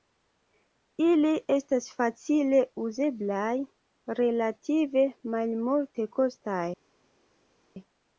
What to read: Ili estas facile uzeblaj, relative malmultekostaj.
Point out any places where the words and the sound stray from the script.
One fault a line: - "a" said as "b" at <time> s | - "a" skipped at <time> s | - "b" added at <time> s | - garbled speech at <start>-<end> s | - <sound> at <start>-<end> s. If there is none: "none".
none